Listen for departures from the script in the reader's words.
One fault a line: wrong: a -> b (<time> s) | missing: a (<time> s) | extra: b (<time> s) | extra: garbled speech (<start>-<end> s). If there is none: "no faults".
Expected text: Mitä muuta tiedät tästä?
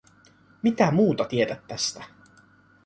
no faults